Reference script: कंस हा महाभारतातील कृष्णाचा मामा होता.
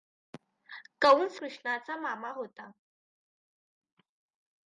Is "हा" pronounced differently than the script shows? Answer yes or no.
yes